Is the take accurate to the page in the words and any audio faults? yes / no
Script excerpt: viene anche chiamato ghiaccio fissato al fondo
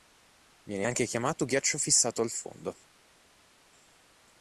yes